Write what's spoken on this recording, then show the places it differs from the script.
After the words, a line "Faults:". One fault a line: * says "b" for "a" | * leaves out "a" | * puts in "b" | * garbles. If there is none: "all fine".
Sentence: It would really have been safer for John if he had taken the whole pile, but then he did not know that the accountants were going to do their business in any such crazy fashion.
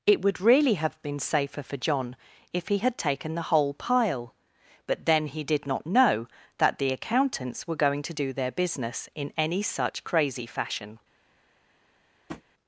It would really have been safer for John if he had taken the whole pile, but then he did not know that the accountants were going to do their business in any such crazy fashion.
Faults:
all fine